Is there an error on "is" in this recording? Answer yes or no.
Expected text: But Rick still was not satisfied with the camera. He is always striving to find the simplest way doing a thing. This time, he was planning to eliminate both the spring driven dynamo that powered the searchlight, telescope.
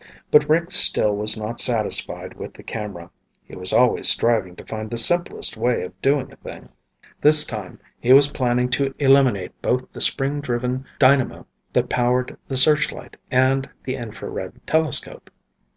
yes